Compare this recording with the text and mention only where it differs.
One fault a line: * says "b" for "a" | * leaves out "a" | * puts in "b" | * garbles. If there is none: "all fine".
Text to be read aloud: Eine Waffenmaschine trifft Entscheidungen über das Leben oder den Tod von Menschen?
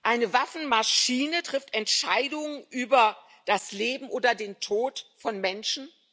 all fine